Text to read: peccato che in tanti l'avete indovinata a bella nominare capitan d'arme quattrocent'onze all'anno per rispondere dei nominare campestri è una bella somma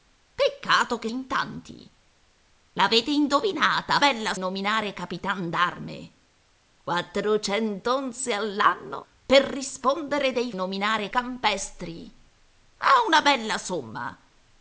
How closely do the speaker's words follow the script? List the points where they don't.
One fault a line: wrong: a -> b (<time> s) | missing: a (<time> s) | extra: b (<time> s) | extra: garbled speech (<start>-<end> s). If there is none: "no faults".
no faults